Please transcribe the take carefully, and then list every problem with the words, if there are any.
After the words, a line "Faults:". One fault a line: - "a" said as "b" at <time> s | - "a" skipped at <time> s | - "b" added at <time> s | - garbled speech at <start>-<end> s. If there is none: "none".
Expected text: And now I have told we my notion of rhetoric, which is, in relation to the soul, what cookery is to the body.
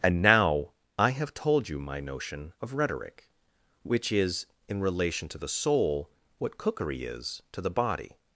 And now I have told you my notion of rhetoric, which is, in relation to the soul, what cookery is to the body.
Faults:
- "we" said as "you" at 1.7 s